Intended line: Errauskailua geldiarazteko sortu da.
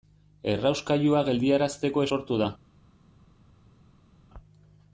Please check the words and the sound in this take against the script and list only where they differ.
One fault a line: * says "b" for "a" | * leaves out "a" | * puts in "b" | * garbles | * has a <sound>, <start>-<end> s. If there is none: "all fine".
all fine